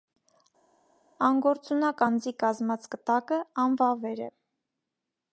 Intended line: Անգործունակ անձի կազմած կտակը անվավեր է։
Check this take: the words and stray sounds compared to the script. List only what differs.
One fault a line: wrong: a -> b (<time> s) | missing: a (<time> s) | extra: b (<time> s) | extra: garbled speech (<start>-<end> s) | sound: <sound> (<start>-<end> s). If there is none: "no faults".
no faults